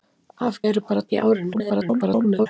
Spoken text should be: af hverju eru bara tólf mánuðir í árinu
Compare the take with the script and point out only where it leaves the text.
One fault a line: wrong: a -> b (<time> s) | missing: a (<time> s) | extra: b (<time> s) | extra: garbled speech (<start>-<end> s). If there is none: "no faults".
missing: hverju (0.6 s)
missing: tólf mánuðir (1.0 s)
extra: garbled speech (1.5-2.5 s)